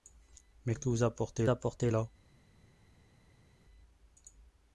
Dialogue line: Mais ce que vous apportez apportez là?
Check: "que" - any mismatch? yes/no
no